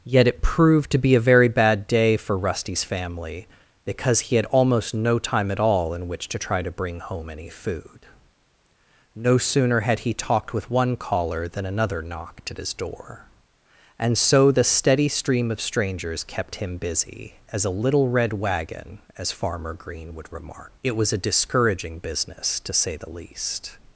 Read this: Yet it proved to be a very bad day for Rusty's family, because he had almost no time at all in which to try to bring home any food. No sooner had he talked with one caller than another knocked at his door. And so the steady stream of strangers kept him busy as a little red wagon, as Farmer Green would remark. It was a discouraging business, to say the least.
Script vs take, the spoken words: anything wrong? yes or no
no